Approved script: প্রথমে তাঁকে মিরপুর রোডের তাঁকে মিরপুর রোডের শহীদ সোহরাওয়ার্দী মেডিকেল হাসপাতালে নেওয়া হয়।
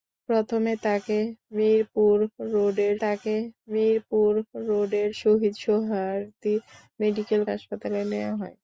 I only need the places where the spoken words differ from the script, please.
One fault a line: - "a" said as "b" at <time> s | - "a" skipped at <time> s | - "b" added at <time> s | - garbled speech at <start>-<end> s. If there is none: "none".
none